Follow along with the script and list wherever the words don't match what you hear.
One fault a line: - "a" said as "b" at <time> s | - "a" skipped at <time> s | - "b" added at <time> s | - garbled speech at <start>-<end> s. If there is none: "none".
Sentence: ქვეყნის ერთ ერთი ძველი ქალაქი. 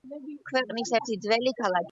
- "ერთ" skipped at 0.9 s